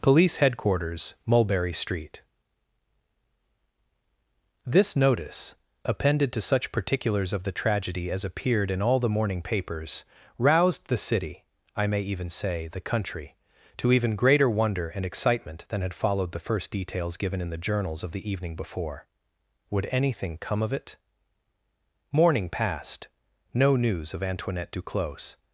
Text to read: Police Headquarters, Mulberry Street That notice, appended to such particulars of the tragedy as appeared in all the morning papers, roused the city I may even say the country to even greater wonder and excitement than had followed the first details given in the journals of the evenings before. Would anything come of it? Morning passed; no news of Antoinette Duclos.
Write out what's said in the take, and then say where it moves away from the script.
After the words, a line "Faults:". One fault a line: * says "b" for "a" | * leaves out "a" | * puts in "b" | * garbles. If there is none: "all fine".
Police Headquarters, Mulberry Street This notice, appended to such particulars of the tragedy as appeared in all the morning papers, roused the city I may even say the country to even greater wonder and excitement than had followed the first details given in the journals of the evening before. Would anything come of it? Morning passed; no news of Antoinette Duclos.
Faults:
* says "This" for "That"
* says "evening" for "evenings"